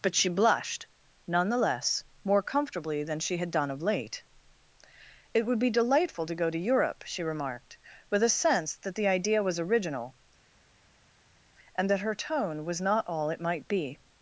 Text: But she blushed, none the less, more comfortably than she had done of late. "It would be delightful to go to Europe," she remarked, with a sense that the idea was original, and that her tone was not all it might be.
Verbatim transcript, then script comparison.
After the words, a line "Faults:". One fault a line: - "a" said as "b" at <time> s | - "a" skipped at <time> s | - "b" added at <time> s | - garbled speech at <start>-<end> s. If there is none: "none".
But she blushed, none the less, more comfortably than she had done of late. "It would be delightful to go to Europe," she remarked, with a sense that the idea was original, and that her tone was not all it might be.
Faults:
none